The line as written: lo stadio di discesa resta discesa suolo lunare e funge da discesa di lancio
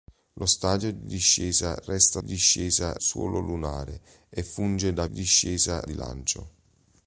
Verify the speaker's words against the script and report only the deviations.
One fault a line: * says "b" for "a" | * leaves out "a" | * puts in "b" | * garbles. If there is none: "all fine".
all fine